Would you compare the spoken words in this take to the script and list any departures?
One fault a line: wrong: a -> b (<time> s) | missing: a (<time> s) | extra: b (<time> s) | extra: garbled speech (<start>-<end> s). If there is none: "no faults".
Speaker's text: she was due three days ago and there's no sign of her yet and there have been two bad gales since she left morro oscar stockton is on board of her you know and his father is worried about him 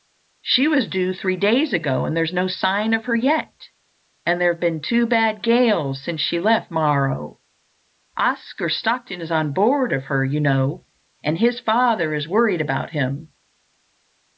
no faults